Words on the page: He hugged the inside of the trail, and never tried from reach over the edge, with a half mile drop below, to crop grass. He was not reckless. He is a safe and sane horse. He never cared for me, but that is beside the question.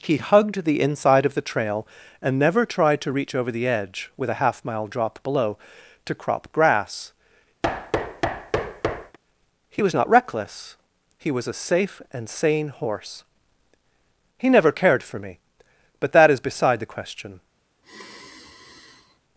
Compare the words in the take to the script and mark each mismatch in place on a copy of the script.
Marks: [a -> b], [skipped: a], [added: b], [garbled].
He hugged the inside of the trail, and never tried [from -> to] reach over the edge, with a half mile drop below, to crop grass. He was not reckless. He [is -> was] a safe and sane horse. He never cared for me, but that is beside the question.